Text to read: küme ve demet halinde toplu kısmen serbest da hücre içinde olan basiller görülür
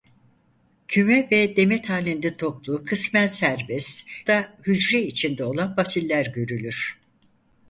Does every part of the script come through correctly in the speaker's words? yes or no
yes